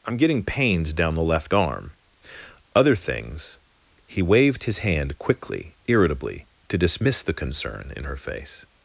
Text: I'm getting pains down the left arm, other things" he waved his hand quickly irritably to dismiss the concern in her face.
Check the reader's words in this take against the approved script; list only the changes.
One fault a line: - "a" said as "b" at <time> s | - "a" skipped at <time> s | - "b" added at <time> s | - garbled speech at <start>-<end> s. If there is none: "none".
none